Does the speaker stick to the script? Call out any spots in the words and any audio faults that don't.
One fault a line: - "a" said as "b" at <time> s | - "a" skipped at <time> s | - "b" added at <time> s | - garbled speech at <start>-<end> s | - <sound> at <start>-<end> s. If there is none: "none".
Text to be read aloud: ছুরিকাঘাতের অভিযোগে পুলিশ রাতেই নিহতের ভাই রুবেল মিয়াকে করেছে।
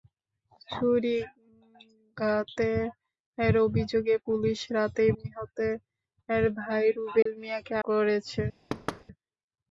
- dropout at 7.2-7.3 s
- thud at 8.7-9.0 s